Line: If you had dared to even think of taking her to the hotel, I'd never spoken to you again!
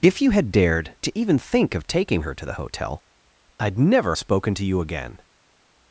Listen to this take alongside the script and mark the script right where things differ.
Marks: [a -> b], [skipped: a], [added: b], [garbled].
If you had dared to even think of taking her to the hotel, I'd never spoken to you again!